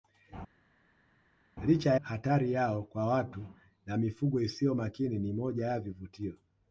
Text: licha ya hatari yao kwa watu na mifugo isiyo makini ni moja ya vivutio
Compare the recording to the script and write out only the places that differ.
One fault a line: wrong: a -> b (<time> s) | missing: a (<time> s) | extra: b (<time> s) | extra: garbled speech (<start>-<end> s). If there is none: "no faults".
missing: ya (1.9 s)